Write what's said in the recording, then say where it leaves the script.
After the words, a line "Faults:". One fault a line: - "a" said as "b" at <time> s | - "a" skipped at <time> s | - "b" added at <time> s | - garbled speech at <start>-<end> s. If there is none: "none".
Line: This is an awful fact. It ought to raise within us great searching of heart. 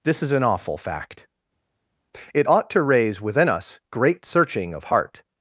This is an awful fact. It ought to raise within us great searching of heart.
Faults:
none